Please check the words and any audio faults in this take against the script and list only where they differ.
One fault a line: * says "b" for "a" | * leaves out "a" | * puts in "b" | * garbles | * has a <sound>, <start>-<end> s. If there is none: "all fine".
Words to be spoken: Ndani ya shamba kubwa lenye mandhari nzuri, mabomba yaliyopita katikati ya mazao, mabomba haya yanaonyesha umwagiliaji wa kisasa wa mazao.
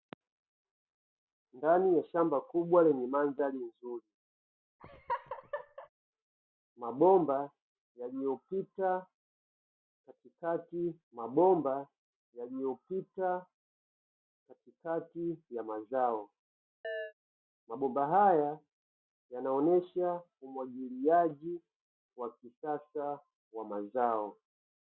* has a laugh, 4.8-5.9 s
* puts in "mabomba yaliyopita katikati"
* has a chirp, 16.8-17.1 s